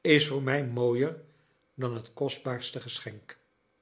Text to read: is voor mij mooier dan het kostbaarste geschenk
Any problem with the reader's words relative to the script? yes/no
no